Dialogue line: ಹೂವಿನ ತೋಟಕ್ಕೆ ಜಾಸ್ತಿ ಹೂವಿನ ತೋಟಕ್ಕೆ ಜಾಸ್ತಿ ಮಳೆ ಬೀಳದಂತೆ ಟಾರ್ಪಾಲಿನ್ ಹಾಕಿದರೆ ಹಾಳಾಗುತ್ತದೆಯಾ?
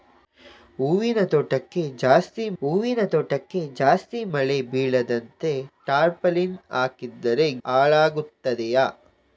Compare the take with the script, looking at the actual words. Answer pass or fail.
pass